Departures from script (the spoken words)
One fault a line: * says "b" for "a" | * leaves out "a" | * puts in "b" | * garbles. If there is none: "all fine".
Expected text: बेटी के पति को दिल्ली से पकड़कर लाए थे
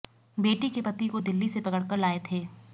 all fine